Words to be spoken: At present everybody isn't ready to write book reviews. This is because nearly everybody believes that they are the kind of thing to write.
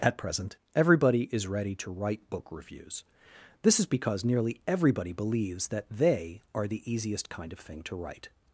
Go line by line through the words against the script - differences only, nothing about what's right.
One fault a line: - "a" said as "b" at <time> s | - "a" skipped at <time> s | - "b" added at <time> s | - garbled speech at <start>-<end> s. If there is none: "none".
- "isn't" said as "is" at 1.3 s
- "easiest" added at 6.9 s